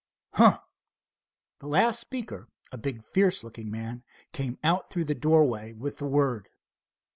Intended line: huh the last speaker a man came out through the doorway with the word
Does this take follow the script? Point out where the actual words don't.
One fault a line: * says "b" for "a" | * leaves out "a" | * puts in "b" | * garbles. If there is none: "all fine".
* puts in "big fierce looking"